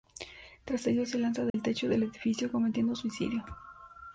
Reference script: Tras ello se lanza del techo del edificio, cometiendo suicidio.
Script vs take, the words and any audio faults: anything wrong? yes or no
yes